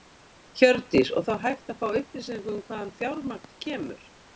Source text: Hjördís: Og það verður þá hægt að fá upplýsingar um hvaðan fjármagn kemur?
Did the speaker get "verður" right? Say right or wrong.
wrong